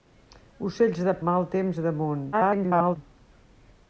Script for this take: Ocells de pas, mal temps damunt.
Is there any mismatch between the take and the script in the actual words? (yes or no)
yes